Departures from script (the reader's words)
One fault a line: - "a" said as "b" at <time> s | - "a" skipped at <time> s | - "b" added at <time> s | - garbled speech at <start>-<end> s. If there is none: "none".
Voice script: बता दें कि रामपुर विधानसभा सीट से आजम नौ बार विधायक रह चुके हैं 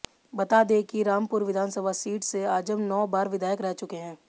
none